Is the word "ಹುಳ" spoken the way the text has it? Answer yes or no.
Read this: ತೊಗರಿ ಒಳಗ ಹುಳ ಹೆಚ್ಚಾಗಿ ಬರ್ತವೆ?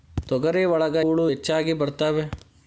yes